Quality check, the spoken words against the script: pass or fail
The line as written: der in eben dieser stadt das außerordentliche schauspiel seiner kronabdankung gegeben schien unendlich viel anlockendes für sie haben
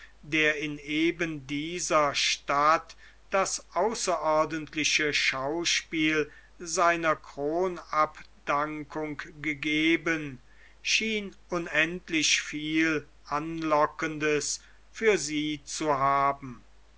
fail